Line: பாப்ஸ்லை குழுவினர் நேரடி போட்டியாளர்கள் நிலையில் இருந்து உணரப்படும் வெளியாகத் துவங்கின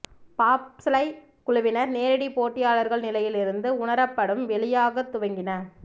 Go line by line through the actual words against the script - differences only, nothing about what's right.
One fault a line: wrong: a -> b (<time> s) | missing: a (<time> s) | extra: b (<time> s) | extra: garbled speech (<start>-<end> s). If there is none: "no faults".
no faults